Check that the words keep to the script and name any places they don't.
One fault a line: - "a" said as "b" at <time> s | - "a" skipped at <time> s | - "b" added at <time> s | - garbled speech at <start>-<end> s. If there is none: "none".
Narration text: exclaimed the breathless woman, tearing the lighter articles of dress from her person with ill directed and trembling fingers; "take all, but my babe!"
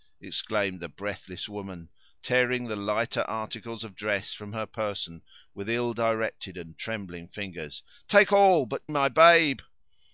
none